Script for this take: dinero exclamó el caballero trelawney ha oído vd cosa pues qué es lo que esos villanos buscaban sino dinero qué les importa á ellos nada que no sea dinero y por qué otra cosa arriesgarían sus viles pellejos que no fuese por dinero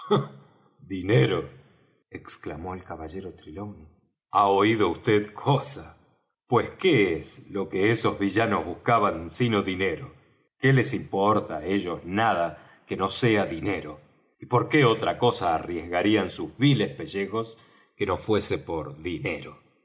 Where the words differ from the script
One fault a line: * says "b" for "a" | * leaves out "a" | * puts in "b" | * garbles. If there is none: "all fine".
all fine